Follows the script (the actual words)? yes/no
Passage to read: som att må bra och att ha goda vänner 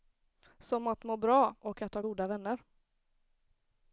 yes